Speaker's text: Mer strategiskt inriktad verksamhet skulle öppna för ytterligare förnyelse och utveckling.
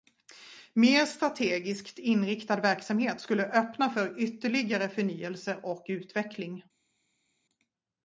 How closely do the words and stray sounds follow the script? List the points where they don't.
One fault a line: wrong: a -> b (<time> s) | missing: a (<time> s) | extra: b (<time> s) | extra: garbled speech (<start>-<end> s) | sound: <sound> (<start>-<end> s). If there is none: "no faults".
no faults